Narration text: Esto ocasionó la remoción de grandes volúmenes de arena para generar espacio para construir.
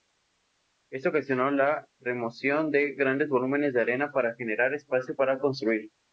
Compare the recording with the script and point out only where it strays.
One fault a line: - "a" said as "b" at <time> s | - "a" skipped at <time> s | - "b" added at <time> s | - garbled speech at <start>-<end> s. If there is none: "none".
none